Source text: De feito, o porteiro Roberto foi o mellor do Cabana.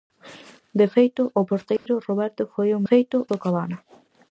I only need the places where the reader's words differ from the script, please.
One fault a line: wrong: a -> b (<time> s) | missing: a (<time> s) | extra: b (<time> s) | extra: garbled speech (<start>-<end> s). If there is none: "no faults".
wrong: mellor -> feito (2.9 s)